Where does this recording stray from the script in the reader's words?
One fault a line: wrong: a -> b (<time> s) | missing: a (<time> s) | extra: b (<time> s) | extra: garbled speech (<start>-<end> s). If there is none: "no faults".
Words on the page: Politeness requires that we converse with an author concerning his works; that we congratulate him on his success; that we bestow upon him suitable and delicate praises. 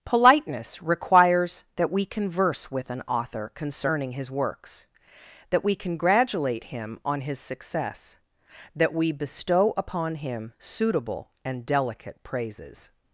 no faults